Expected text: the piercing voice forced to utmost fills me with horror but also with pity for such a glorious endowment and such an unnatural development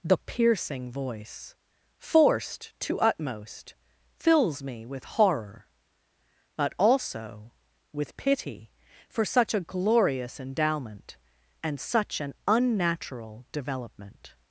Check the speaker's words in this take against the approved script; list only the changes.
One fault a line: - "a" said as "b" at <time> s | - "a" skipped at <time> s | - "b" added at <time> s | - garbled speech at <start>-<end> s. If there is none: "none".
none